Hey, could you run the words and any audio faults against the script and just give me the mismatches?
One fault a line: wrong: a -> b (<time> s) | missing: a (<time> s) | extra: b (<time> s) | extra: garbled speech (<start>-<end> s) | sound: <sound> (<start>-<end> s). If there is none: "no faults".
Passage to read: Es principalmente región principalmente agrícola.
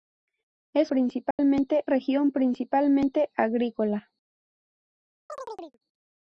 sound: dropout (1.3-1.4 s)
sound: chirp (5.3-5.8 s)